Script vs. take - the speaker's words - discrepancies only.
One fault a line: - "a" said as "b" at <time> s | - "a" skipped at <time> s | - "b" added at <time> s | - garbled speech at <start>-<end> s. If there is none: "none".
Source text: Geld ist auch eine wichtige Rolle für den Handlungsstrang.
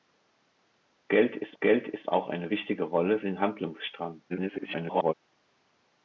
- "geld ist" added at 1.6 s
- "für" skipped at 3.2 s
- garbled speech at 4.3-5.1 s